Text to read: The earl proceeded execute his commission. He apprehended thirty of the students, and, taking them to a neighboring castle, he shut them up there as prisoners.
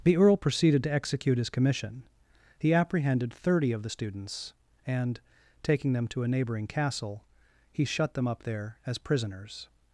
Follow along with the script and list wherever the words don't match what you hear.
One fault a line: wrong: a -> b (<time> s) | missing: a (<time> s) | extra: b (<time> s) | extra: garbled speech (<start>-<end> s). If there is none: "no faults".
extra: to (0.8 s)